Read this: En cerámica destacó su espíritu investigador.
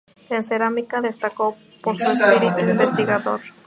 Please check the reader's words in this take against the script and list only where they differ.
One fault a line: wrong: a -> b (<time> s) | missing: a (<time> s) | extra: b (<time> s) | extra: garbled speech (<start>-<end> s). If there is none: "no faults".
extra: por (1.8 s)